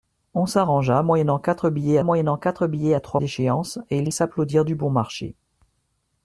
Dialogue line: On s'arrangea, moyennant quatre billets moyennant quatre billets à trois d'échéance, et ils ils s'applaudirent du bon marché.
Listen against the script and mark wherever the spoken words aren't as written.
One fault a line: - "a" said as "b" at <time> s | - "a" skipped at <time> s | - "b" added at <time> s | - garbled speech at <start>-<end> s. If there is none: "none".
none